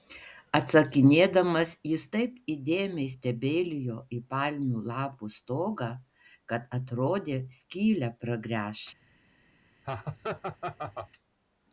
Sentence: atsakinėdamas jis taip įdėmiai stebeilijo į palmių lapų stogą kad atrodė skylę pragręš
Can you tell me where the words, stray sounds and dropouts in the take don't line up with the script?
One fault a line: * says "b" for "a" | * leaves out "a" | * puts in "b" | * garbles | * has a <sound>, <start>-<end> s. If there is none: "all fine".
* has a laugh, 9.8-11.1 s